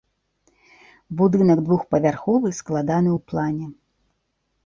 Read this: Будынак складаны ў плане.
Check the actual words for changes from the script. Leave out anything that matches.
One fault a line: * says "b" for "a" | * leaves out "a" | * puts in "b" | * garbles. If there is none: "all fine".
* puts in "двухпавярховы"